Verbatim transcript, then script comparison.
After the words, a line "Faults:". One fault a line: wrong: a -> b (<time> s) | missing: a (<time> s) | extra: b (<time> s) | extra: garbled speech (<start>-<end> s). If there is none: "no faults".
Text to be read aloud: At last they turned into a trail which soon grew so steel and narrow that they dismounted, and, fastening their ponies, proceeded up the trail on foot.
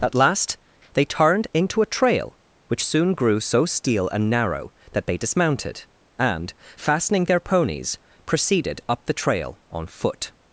At last they turned into a trail which soon grew so steel and narrow that they dismounted, and, fastening their ponies, proceeded up the trail on foot.
Faults:
no faults